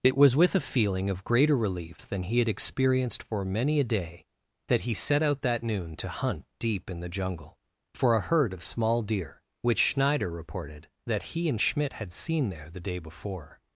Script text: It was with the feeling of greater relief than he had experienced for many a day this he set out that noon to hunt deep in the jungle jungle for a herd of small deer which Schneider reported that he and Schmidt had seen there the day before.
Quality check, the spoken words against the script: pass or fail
fail